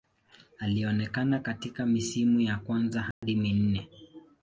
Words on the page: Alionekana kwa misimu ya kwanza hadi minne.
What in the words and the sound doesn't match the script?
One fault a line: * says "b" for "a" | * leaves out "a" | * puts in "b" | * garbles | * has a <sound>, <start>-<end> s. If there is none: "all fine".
* says "katika" for "kwa"
* has a dropout, 3.1-3.2 s